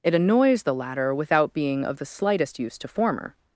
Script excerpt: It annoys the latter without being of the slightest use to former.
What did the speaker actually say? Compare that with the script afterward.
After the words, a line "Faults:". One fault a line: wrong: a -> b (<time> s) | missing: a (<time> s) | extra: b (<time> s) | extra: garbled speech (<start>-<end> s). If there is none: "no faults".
It annoys the latter without being of the slightest use to former.
Faults:
no faults